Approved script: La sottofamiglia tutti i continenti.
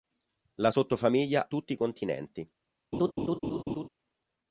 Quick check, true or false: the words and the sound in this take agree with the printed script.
false